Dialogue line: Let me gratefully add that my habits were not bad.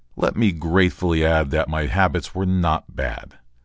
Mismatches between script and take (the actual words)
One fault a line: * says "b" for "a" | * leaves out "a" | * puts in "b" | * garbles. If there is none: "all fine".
all fine